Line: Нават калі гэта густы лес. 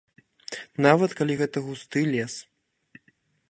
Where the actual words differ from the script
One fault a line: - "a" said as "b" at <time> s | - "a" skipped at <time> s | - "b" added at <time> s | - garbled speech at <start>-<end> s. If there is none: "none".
none